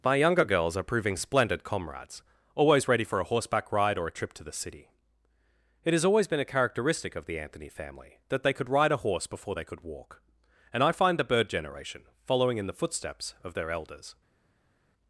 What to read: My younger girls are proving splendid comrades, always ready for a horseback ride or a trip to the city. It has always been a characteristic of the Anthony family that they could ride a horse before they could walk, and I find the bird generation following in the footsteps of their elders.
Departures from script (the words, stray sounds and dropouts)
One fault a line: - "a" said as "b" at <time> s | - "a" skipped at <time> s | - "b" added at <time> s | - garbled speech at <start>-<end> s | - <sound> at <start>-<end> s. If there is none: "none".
none